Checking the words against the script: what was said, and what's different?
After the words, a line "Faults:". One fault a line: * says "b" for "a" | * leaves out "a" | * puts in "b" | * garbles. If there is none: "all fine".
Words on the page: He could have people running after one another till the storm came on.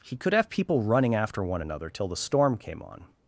He could have people running after one another till the storm came on.
Faults:
all fine